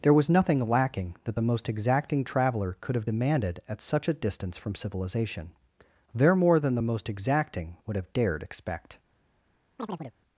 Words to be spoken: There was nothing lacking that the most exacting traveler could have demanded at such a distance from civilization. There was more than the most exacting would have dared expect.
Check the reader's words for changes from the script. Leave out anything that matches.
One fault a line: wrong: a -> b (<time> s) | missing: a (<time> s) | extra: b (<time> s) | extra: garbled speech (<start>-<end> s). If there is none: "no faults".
missing: was (6.3 s)